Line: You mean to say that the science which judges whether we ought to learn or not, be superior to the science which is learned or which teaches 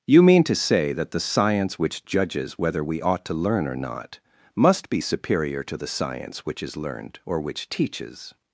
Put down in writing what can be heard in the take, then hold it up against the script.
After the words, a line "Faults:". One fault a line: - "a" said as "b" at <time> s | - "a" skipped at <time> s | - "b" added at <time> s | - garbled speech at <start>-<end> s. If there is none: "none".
You mean to say that the science which judges whether we ought to learn or not, must be superior to the science which is learned or which teaches
Faults:
- "must" added at 4.5 s